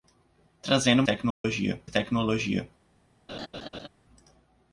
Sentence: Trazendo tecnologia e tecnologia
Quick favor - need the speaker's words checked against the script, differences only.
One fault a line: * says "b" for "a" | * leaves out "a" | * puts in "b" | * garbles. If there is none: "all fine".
all fine